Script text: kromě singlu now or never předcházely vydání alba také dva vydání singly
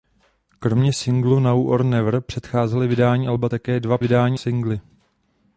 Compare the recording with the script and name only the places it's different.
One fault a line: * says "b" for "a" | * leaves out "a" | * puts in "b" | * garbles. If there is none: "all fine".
all fine